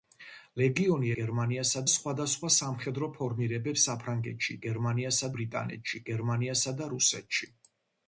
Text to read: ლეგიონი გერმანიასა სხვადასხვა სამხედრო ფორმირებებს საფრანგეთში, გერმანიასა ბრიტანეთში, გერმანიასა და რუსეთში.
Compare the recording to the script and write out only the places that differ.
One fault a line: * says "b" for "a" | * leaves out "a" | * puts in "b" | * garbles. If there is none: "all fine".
all fine